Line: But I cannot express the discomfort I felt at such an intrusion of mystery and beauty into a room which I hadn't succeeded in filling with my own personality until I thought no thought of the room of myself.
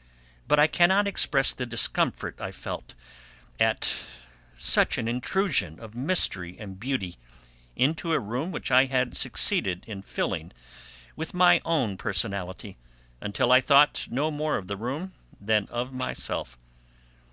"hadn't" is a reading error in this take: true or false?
true